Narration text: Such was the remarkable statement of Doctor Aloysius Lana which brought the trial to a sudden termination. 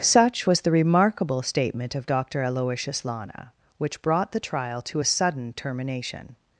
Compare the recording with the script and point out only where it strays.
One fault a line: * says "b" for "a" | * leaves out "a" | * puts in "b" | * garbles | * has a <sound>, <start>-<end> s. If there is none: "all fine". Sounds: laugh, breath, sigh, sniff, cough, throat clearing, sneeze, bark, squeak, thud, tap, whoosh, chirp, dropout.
all fine